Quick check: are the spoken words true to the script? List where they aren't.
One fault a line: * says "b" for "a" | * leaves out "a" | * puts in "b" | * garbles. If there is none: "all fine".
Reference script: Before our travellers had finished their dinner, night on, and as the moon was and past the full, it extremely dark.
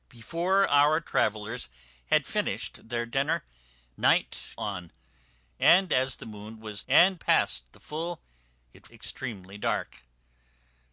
all fine